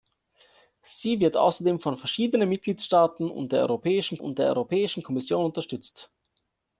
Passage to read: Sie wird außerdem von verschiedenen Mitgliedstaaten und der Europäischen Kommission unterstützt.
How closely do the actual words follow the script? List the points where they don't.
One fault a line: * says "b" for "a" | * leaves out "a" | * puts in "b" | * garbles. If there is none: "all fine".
* puts in "und der Europäischen"